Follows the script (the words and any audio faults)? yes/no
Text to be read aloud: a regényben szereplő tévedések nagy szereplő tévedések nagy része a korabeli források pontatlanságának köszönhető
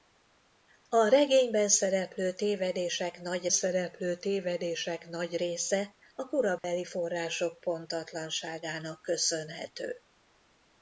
no